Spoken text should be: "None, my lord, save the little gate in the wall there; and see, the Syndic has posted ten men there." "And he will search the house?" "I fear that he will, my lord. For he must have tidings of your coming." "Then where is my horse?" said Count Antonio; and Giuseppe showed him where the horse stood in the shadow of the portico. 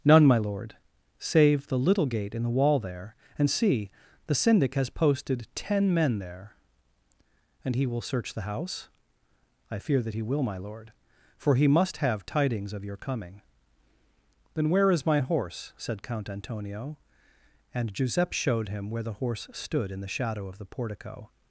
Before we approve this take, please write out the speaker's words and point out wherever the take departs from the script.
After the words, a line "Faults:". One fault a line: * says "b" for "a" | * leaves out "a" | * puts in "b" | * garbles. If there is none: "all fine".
"None, my lord, save the little gate in the wall there; and see, the Syndic has posted ten men there." "And he will search the house?" "I fear that he will, my lord. For he must have tidings of your coming." "Then where is my horse?" said Count Antonio; and Giuseppe showed him where the horse stood in the shadow of the portico.
Faults:
all fine